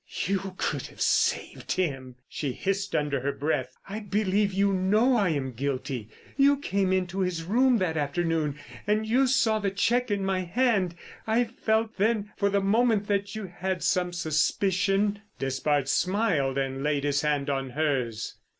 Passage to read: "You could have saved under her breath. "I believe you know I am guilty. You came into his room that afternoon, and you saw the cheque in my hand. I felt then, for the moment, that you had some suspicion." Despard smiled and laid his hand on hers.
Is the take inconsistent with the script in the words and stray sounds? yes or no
yes